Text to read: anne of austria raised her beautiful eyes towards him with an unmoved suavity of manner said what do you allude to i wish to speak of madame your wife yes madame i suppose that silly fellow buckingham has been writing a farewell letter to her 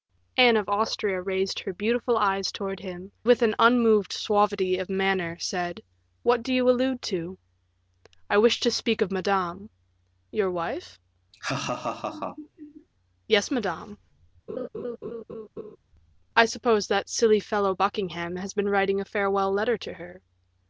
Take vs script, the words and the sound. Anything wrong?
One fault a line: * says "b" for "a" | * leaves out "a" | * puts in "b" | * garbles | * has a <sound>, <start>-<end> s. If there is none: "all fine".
* has a laugh, 11.3-12.9 s
* has a laugh, 14.5-15.8 s